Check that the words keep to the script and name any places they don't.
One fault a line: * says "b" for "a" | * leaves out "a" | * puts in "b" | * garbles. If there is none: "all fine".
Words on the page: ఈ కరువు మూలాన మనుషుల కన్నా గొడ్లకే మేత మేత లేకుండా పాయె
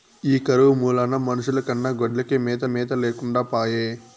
all fine